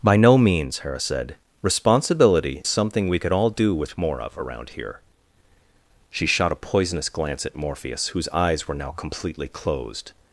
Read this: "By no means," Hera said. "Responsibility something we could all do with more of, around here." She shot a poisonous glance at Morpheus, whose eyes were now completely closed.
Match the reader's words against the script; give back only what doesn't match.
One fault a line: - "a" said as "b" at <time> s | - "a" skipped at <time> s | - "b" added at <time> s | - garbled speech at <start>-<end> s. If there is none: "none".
none